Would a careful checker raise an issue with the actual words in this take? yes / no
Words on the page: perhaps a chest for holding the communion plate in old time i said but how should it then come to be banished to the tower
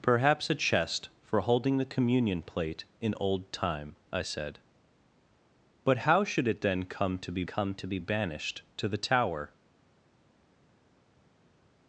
yes